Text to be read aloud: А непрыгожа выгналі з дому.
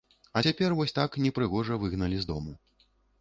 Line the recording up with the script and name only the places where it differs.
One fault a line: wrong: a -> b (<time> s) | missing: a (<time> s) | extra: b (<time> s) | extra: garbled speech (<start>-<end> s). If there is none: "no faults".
extra: цяпер вось так (0.5 s)